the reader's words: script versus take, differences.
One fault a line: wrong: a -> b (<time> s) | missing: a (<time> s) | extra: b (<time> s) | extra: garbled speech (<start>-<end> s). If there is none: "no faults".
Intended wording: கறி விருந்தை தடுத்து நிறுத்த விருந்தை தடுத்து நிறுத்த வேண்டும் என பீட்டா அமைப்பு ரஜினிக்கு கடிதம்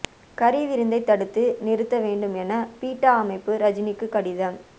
missing: விருந்தை தடுத்து நிறுத்த (2.0 s)